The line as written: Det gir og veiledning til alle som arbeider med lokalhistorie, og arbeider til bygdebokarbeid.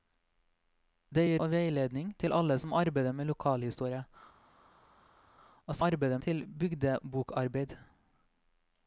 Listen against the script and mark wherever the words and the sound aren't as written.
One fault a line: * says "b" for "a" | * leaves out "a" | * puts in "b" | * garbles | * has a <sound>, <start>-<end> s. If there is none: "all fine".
all fine